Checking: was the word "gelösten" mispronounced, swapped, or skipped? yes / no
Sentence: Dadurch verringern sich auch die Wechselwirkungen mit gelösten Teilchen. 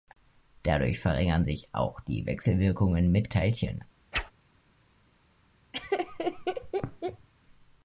yes